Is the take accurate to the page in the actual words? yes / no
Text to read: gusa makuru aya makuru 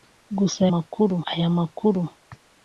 yes